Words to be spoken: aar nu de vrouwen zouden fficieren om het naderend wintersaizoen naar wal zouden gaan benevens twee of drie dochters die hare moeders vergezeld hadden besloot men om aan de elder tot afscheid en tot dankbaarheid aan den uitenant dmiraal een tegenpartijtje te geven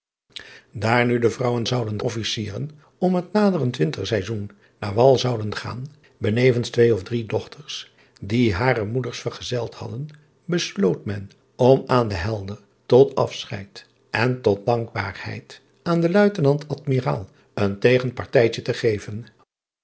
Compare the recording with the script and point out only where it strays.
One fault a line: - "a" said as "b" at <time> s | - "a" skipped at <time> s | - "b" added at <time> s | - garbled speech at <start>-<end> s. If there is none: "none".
none